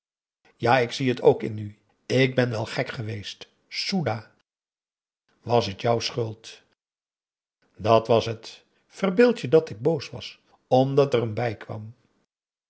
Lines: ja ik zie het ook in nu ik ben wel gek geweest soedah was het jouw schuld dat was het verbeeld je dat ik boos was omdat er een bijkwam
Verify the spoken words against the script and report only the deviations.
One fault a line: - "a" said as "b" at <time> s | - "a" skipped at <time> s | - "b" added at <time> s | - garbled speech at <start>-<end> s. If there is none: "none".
none